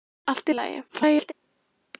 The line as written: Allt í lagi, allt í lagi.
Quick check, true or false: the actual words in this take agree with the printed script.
false